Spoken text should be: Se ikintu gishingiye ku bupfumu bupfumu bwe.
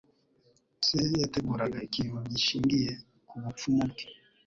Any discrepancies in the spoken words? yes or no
yes